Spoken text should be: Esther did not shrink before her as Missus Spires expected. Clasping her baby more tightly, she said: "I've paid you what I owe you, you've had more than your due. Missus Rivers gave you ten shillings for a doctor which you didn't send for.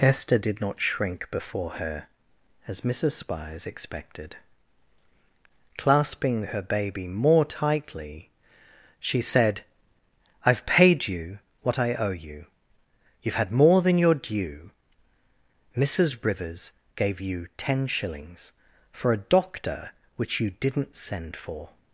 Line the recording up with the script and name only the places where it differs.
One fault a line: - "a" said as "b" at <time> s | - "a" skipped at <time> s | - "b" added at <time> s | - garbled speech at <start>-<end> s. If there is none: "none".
none